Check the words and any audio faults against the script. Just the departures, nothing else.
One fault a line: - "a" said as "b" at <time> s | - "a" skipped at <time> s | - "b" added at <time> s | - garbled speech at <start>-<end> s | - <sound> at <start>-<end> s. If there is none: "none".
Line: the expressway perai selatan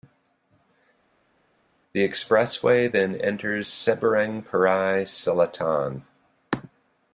- "then enters seberang" added at 2.9 s